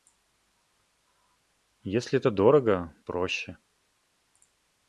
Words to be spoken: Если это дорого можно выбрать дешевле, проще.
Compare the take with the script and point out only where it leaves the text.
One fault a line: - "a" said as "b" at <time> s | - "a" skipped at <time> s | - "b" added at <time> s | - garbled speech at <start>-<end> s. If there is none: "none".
- "можно выбрать дешевле" skipped at 3.0 s